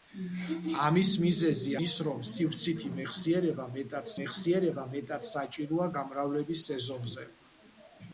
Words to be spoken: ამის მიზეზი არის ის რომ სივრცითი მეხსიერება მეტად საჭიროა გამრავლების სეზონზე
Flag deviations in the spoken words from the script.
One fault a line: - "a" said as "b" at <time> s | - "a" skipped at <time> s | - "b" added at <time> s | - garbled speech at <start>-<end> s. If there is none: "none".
- "არის" skipped at 1.7 s
- "მეხსიერება მეტად" added at 4.2 s